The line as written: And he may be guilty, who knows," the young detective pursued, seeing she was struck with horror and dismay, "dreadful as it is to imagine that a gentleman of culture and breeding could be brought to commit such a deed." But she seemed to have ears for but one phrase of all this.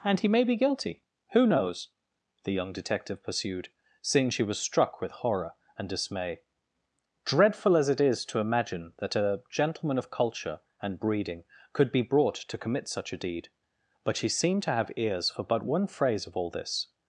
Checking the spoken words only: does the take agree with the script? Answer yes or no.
yes